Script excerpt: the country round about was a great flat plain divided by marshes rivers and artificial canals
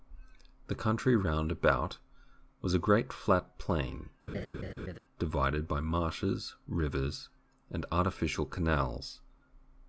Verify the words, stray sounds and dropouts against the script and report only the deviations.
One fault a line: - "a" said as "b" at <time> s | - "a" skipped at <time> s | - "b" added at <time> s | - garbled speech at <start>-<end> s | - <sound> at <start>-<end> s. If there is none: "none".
- laugh at 4.3-5.0 s